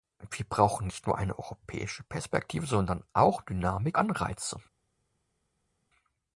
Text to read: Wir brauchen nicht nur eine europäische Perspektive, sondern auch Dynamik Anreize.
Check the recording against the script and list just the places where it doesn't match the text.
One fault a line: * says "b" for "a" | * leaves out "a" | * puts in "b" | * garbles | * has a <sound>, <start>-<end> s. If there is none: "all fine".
all fine